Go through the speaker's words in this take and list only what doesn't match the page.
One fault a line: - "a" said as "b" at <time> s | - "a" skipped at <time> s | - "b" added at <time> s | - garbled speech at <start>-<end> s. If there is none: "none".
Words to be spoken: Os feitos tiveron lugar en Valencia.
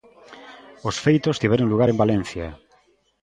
none